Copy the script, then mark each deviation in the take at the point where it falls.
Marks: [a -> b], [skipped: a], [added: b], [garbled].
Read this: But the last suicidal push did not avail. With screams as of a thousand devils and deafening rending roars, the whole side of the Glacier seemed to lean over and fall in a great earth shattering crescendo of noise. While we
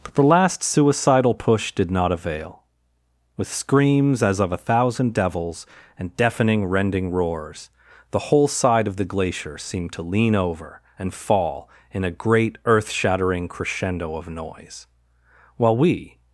But the last suicidal push did not avail. With screams as of a thousand devils and deafening rending roars, the whole side of the Glacier seemed to lean over and fall in a great earth shattering crescendo of noise. While we